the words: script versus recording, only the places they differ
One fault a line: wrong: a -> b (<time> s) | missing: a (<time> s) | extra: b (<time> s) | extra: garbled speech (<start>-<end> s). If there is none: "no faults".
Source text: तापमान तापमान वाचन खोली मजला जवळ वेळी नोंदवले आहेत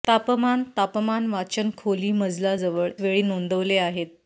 no faults